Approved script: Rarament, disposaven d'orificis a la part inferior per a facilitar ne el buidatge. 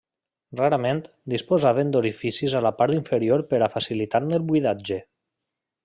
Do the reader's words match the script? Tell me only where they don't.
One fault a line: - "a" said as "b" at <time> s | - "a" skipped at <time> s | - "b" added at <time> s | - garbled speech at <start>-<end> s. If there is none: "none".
none